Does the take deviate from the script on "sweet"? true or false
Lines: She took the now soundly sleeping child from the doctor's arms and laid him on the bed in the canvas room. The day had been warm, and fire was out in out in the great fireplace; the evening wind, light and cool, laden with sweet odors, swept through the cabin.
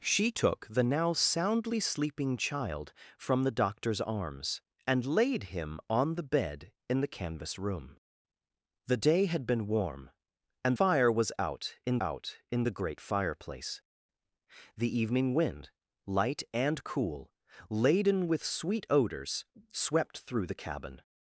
false